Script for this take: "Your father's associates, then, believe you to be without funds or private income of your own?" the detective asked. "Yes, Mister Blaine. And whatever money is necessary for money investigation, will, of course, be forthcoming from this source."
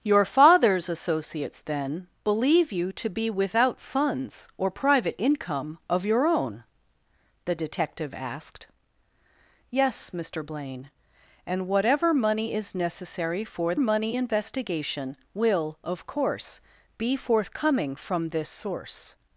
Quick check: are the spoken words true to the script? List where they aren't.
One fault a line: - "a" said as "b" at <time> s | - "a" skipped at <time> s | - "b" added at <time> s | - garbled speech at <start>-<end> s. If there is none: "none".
none